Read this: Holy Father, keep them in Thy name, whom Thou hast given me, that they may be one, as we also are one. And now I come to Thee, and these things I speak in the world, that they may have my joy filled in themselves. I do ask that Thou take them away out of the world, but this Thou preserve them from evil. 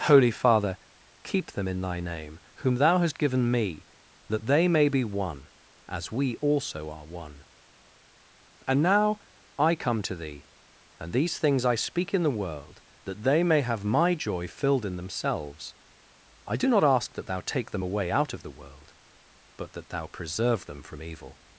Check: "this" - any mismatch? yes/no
yes